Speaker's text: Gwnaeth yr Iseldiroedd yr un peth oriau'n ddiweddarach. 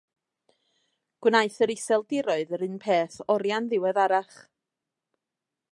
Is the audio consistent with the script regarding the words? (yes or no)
yes